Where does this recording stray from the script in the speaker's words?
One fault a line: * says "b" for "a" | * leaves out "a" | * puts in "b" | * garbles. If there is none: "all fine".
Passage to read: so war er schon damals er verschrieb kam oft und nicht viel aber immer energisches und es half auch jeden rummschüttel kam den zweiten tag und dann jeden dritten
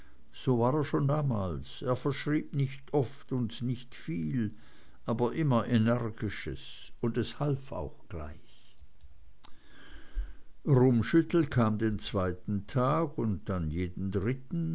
* says "nicht" for "kam"
* says "gleich" for "jeden"